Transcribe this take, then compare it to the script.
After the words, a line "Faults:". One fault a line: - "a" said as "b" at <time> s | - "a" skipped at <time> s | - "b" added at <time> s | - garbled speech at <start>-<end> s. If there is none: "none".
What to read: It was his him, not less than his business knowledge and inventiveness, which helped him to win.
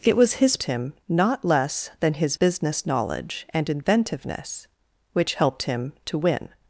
It was his him, not less than his business knowledge and inventiveness, which helped him to win.
Faults:
none